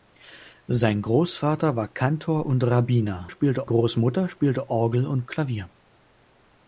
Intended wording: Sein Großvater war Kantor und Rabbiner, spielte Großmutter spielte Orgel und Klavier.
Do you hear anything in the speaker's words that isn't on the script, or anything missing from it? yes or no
no